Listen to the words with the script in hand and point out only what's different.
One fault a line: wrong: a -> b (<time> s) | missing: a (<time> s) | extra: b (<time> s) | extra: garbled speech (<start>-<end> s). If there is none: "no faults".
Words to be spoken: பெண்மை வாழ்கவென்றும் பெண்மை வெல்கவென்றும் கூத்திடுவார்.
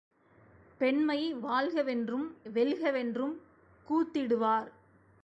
missing: பெண்மை (2.3 s)